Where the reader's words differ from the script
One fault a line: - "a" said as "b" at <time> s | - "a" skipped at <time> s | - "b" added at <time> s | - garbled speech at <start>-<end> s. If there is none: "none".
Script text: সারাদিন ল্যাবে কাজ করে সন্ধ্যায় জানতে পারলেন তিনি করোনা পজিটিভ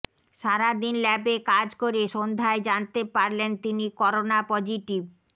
none